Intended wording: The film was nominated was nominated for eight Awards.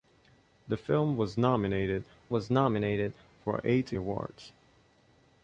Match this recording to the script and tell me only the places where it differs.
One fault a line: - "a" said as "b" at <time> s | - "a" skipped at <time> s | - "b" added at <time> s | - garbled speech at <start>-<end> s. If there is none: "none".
none